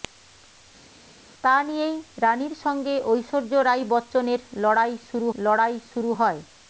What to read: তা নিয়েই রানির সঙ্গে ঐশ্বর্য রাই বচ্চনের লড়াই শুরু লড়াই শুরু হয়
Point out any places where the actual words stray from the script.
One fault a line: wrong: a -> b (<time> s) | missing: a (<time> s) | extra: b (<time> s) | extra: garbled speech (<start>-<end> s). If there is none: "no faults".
no faults